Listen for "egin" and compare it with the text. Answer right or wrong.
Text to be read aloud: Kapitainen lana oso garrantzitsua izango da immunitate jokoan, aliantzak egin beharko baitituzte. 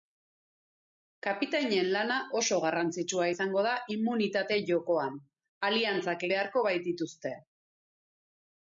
wrong